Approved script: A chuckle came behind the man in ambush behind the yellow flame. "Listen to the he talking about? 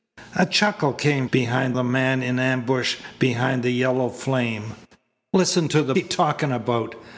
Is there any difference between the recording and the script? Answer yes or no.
no